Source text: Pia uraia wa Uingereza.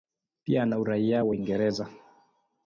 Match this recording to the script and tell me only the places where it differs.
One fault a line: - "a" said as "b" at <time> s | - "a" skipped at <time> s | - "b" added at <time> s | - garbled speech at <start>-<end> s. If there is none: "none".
- "ana" added at 0.6 s